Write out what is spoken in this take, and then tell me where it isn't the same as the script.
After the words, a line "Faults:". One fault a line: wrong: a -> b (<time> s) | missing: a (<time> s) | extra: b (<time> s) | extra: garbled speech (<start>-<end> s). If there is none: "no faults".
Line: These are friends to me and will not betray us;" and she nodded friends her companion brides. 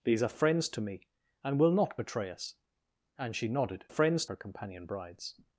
These are friends to me and will not betray us;" and she nodded friends her companion brides.
Faults:
no faults